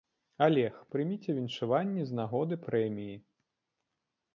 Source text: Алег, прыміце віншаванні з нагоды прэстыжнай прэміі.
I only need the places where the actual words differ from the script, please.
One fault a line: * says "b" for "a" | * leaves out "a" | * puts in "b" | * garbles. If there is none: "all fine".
* leaves out "прэстыжнай"